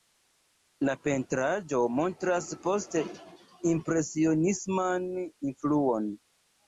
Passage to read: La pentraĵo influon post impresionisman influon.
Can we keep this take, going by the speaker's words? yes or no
no